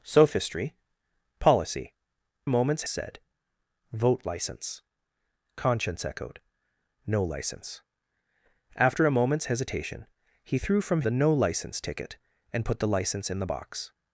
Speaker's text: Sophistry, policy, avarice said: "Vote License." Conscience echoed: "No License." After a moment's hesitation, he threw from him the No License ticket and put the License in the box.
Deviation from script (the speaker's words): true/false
true